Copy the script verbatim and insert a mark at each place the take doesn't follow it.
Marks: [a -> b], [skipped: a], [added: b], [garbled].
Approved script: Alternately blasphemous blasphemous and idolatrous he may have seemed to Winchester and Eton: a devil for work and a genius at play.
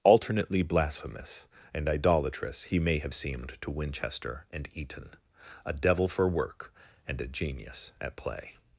Alternately blasphemous [skipped: blasphemous] and idolatrous he may have seemed to Winchester and Eton: a devil for work and a genius at play.